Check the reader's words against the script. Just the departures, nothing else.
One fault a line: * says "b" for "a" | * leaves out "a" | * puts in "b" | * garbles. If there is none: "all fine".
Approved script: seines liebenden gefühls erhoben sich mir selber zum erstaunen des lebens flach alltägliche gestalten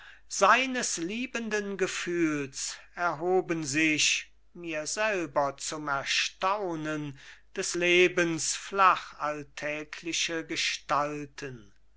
all fine